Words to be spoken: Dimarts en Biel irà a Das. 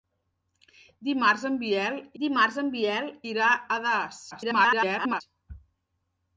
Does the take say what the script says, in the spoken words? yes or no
no